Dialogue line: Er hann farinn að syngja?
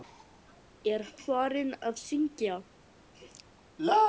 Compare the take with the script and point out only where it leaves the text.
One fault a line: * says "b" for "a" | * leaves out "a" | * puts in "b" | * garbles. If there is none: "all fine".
* leaves out "hann"